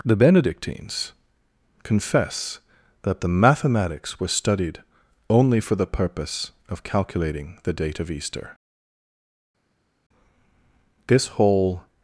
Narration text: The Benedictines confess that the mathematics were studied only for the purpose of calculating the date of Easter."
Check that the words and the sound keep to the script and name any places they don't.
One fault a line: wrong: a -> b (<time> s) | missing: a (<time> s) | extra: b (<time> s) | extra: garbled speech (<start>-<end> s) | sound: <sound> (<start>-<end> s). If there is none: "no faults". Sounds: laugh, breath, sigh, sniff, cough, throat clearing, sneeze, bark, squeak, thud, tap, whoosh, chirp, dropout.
extra: This whole (11.1 s)